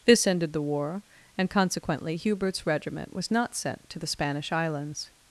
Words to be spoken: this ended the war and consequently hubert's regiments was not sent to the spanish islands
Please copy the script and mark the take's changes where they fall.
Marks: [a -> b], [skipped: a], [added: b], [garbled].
this ended the war and consequently hubert's [regiments -> regiment] was not sent to the spanish islands